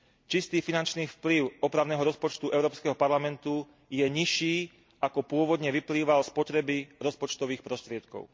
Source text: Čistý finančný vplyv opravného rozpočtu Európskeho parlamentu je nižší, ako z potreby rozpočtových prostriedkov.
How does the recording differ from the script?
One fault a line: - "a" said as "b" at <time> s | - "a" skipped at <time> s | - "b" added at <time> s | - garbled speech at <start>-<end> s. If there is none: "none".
- "pôvodne vyplýval" added at 5.2 s